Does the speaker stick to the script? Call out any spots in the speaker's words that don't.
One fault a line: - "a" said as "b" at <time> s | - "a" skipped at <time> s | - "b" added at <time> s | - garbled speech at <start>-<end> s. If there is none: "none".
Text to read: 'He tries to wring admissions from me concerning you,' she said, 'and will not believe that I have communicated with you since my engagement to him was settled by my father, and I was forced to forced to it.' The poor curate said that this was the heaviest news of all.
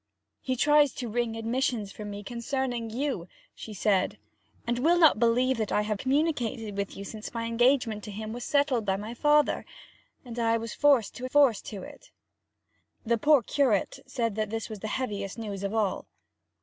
none